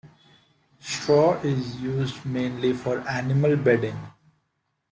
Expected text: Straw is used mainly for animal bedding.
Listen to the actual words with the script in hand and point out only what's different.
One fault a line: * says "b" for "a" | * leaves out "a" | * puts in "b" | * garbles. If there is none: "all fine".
all fine